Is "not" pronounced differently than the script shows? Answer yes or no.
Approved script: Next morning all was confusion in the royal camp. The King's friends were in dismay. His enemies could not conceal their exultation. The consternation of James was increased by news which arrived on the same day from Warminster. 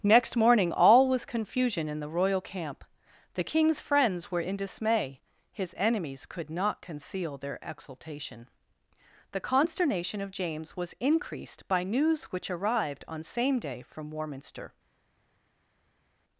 no